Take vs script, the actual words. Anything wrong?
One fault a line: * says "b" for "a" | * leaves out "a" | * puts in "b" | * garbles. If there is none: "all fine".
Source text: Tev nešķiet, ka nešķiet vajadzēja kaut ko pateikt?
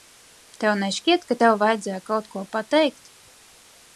* says "tev" for "nešķiet"